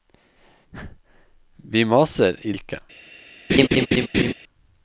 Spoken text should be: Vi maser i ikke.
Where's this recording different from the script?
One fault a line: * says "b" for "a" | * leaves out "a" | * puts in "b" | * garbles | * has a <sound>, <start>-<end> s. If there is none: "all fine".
* has a laugh, 3.5-4.3 s